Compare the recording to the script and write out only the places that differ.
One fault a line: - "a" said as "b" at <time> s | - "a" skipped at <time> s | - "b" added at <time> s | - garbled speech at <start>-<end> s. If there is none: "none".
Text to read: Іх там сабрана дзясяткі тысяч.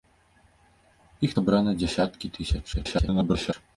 - "там" skipped at 1.4 s
- garbled speech at 2.7-3.5 s